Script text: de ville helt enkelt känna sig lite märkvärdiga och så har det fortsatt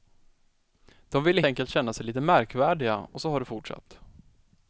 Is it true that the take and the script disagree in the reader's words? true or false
true